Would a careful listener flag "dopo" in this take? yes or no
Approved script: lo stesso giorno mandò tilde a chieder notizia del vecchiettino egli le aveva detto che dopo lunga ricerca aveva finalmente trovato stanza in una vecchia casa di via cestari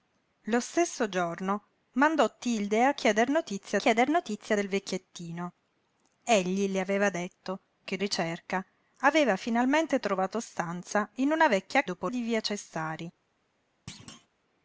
yes